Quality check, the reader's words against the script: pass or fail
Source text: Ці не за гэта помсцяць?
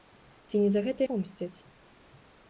pass